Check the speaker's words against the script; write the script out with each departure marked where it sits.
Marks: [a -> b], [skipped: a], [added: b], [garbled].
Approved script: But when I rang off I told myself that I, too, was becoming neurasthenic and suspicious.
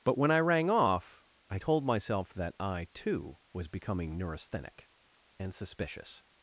But when I rang off I told myself that I, too, was becoming neurasthenic and suspicious.